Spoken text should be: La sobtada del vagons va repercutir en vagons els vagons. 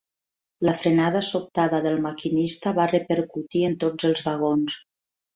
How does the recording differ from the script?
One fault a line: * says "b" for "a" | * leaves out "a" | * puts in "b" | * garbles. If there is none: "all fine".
* puts in "frenada"
* says "maquinista" for "vagons"
* says "tots" for "vagons"